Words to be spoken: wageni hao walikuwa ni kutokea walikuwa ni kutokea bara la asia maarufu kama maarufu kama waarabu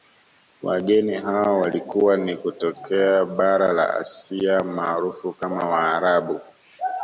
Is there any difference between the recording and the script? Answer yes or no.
yes